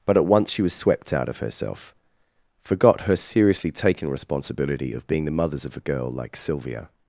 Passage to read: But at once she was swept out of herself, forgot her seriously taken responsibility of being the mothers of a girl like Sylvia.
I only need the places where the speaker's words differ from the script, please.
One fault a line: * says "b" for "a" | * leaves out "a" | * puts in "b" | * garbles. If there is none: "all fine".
all fine